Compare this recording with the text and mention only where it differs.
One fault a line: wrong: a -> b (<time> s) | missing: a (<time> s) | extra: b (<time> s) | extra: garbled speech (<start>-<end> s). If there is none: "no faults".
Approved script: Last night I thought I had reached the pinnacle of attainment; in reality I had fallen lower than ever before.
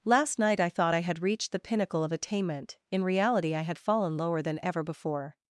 no faults